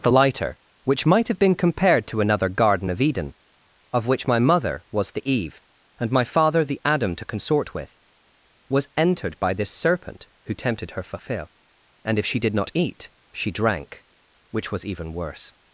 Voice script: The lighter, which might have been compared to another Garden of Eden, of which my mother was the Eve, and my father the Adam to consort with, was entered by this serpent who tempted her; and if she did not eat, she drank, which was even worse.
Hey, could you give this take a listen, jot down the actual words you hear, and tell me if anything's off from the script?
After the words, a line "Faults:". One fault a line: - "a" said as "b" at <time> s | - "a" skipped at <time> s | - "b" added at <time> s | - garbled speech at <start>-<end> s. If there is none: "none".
The lighter, which might have been compared to another Garden of Eden, of which my mother was the Eve, and my father the Adam to consort with, was entered by this serpent who tempted her; fulfill and if she did not eat, she drank, which was even worse.
Faults:
- "fulfill" added at 11.0 s